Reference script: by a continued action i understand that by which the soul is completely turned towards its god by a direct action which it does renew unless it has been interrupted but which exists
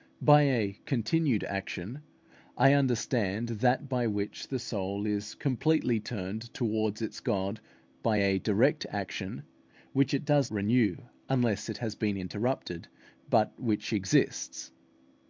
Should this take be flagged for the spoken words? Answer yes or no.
no